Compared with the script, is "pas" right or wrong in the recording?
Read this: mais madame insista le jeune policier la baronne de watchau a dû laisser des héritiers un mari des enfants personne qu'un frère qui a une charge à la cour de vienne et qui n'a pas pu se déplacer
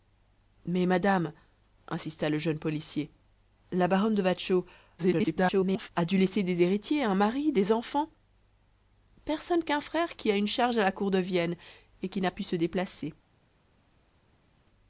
wrong